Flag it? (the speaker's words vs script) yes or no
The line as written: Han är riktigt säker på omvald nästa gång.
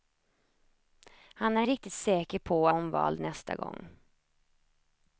no